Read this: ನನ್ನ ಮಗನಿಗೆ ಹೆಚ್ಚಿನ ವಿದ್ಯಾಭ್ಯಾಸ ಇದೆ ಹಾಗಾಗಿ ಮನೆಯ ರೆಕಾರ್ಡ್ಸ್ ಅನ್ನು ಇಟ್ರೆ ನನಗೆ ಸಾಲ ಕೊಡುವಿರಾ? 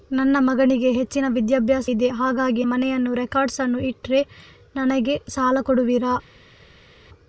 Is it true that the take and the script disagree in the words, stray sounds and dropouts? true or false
false